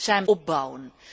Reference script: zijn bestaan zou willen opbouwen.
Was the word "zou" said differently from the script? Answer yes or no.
yes